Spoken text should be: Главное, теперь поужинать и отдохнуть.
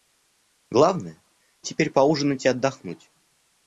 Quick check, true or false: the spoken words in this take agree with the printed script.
true